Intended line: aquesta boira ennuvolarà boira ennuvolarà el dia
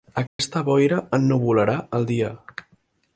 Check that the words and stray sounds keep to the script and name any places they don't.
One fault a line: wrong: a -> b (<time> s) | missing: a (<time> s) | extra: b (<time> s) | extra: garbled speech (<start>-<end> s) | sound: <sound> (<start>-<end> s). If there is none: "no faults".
sound: dropout (0.3-0.4 s)
missing: boira ennuvolarà (1.8 s)